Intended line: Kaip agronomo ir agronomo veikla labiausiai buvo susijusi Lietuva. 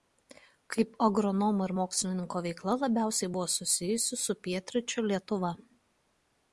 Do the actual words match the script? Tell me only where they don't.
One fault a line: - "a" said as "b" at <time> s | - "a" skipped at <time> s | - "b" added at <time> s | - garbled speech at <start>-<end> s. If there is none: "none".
- "agronomo" said as "mokslininko" at 1.8 s
- "su Pietryčių" added at 4.3 s